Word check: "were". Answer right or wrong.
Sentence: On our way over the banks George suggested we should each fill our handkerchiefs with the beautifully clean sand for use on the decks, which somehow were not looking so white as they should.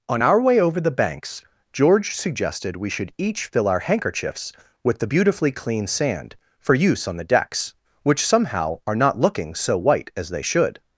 wrong